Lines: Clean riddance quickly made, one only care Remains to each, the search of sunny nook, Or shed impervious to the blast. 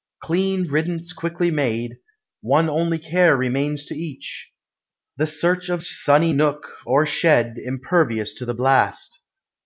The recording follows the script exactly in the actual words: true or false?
true